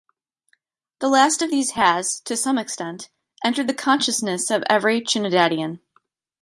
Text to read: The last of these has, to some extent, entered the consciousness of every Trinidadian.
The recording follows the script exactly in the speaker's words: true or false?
true